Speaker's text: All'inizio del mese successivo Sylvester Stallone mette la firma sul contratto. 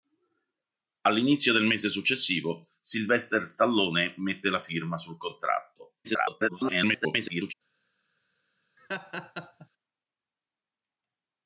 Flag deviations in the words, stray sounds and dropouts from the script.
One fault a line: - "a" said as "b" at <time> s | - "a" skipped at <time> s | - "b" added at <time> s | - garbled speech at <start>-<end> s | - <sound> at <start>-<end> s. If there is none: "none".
- garbled speech at 6.0-7.5 s
- laugh at 8.8-9.7 s